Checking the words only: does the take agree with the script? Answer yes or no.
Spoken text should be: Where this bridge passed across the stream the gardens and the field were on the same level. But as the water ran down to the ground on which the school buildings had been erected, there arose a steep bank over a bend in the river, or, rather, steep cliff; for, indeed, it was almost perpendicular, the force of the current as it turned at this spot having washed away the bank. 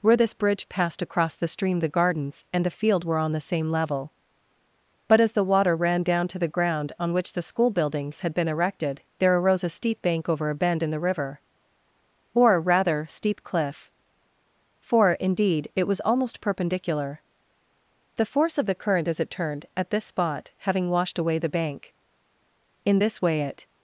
no